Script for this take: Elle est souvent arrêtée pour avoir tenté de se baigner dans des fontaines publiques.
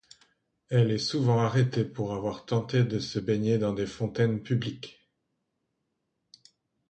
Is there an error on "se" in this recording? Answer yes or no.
no